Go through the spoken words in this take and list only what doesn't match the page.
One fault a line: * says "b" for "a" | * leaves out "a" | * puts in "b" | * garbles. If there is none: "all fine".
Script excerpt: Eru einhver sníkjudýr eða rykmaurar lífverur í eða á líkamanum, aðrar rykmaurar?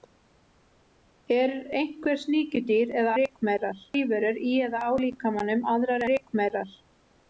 all fine